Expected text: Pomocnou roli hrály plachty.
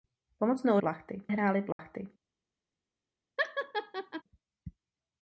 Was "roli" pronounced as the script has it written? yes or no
no